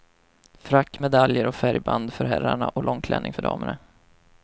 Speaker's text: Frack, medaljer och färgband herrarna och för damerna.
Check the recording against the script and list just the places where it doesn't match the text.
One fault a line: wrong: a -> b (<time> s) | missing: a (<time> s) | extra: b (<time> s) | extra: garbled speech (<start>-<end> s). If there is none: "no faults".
extra: för (2.1 s)
extra: långklänning (2.8 s)